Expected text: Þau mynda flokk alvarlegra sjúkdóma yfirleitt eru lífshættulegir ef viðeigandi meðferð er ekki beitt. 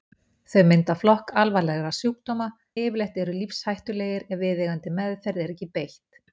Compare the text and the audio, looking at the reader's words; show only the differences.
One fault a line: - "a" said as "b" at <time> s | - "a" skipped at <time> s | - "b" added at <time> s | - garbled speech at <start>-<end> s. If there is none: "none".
none